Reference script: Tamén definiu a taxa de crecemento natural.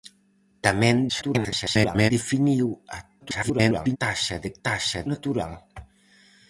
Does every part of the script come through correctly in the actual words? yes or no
no